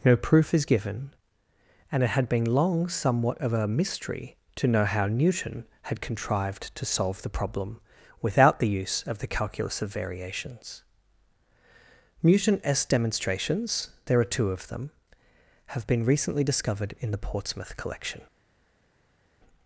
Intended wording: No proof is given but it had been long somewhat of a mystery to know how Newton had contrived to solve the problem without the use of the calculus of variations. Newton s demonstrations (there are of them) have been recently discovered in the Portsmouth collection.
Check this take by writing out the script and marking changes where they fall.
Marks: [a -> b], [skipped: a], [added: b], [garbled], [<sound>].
No proof is given [but -> and] it had been long somewhat of a mystery to know how Newton had contrived to solve the problem without the use of the calculus of variations. Newton s demonstrations (there are [added: two] of them) have been recently discovered in the Portsmouth collection.